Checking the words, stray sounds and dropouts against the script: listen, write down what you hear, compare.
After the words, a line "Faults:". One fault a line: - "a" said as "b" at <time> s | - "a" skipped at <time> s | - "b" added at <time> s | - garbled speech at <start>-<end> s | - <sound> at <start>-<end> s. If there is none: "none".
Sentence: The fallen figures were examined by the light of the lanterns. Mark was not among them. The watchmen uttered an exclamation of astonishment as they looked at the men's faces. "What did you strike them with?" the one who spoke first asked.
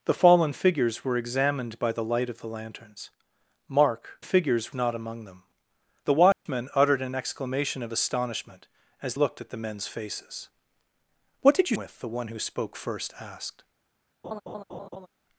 The fallen figures were examined by the light of the lanterns. Mark figures not among them. The watchmen uttered an exclamation of astonishment as looked at the men's faces. "What did you with?" the one who spoke first asked.
Faults:
- "was" said as "figures" at 4.2 s
- dropout at 6.3-6.5 s
- "they" skipped at 9.1 s
- "strike them" skipped at 11.8 s
- laugh at 14.2-15.1 s